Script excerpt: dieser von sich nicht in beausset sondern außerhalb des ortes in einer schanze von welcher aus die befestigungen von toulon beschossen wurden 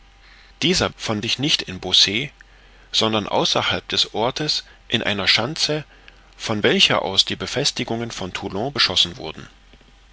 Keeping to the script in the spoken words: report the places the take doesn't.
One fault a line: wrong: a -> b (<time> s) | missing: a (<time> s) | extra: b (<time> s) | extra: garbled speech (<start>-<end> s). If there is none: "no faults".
no faults